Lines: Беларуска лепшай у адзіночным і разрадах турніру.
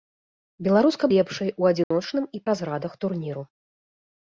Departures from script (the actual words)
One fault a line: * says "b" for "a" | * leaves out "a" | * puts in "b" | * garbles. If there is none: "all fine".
all fine